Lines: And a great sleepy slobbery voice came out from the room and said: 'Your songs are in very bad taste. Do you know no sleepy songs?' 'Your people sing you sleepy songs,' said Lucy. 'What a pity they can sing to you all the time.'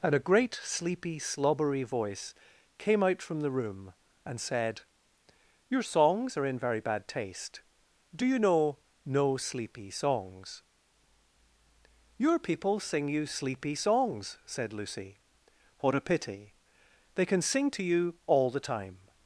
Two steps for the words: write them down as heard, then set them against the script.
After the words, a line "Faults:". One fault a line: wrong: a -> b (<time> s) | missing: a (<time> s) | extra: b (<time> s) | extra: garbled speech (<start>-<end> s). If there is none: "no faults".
And a great sleepy slobbery voice came out from the room and said: 'Your songs are in very bad taste. Do you know no sleepy songs?' 'Your people sing you sleepy songs,' said Lucy. 'What a pity they can sing to you all the time.'
Faults:
no faults